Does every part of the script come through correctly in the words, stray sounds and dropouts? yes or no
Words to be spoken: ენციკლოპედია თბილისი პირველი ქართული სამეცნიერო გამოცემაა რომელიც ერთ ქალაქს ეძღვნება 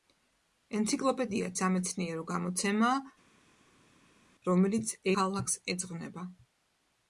no